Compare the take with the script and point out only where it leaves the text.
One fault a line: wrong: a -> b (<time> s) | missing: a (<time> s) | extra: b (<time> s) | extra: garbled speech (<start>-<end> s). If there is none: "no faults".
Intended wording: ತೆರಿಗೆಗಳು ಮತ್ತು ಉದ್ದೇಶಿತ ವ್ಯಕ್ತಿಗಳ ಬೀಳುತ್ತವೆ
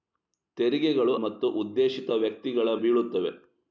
no faults